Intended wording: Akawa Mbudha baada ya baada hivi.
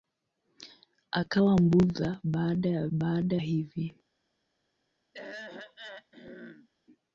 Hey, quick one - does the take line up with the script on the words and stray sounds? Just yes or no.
no